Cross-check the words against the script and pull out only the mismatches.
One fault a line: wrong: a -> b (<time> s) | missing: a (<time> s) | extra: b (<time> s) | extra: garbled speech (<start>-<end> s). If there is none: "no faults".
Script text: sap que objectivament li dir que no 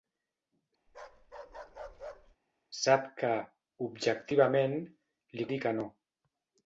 no faults